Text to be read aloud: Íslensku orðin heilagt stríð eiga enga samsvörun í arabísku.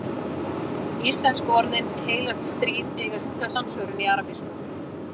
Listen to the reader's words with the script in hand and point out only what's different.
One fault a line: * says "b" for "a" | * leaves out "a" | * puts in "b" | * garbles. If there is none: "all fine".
all fine